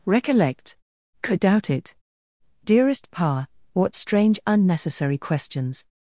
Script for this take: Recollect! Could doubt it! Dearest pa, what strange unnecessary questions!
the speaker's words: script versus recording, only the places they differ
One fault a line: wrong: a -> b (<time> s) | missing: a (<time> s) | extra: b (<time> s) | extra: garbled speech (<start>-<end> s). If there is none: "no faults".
no faults